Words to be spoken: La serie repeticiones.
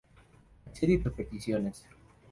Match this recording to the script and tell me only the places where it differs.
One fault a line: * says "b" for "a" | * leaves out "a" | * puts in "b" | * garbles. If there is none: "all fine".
all fine